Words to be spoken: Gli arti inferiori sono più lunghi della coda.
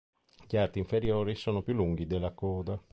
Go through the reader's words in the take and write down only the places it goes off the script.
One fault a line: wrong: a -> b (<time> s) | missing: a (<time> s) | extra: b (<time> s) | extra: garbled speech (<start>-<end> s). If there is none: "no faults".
no faults